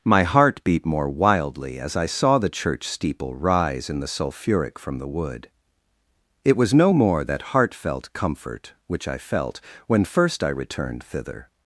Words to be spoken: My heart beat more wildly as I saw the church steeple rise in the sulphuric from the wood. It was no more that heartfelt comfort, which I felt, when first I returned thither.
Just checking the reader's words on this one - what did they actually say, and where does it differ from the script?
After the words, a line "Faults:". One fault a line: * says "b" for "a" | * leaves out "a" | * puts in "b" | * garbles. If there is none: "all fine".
My heart beat more wildly as I saw the church steeple rise in the sulphuric from the wood. It was no more that heartfelt comfort, which I felt, when first I returned thither.
Faults:
all fine